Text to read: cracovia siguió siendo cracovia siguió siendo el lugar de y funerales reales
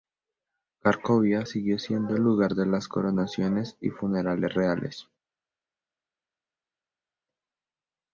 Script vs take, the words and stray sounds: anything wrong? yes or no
yes